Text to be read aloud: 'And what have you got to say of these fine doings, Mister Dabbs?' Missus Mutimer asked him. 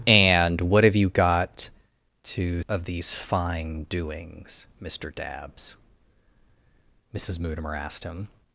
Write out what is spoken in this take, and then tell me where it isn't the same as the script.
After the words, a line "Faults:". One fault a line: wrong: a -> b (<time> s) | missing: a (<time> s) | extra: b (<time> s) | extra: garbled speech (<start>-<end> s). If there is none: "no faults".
'And what have you got to of these fine doings, Mister Dabbs?' Missus Mutimer asked him.
Faults:
missing: say (2.6 s)